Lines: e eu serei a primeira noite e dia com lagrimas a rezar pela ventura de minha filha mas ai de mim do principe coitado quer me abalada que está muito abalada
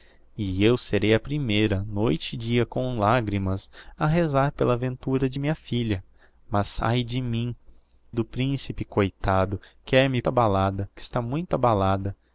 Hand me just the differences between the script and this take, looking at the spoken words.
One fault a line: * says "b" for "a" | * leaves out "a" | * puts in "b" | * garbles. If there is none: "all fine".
all fine